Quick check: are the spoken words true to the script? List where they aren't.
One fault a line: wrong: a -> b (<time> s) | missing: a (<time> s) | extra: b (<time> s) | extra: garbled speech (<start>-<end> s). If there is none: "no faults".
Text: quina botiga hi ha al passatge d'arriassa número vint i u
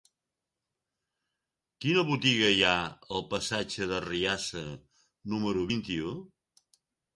no faults